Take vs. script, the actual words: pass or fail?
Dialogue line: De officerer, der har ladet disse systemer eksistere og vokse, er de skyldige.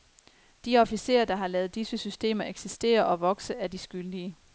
pass